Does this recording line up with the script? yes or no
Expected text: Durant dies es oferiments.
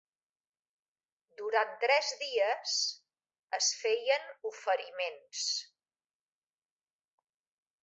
no